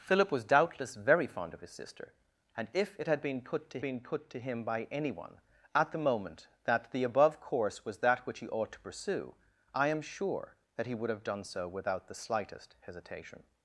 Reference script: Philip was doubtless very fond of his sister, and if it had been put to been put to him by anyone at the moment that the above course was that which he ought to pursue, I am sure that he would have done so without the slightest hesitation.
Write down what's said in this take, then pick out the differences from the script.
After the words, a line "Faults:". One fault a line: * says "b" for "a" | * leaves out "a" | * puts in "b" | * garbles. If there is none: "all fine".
Philip was doubtless very fond of his sister, and if it had been put to been put to him by anyone at the moment that the above course was that which he ought to pursue, I am sure that he would have done so without the slightest hesitation.
Faults:
all fine